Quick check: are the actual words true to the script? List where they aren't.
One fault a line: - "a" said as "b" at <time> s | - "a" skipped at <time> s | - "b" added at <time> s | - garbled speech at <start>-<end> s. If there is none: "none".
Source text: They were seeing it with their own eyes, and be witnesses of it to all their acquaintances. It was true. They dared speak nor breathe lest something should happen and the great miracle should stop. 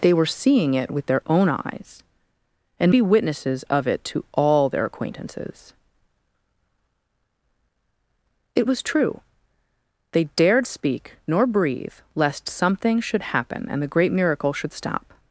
none